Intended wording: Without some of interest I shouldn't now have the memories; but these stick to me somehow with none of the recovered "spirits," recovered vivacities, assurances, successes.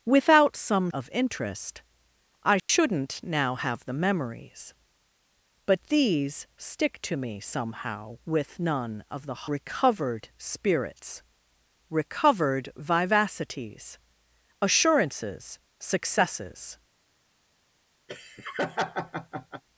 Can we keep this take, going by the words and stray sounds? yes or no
no